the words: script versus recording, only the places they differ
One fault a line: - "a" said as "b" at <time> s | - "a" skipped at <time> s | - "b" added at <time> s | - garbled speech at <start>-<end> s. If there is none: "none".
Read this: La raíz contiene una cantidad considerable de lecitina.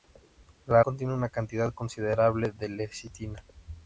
- "raíz" skipped at 0.8 s